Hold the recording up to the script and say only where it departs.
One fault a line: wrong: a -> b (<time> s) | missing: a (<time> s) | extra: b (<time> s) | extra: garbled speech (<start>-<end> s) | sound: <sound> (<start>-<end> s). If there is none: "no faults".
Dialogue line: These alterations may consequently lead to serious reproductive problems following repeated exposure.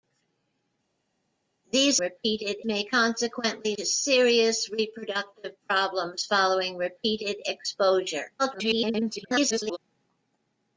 wrong: alterations -> repeated (2.0 s)
missing: lead (3.8 s)
extra: garbled speech (8.4-9.8 s)